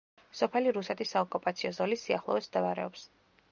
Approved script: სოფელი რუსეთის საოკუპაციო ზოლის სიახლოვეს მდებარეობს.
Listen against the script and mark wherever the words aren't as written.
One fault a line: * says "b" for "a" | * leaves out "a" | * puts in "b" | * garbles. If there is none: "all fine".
all fine